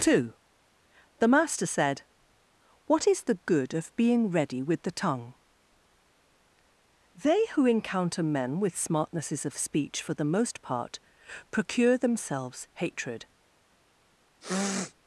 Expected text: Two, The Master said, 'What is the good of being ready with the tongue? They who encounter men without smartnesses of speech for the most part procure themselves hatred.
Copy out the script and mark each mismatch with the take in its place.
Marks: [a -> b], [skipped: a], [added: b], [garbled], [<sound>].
Two, The Master said, 'What is the good of being ready with the tongue? They who encounter men [without -> with] smartnesses of speech for the most part procure themselves hatred. [sniff]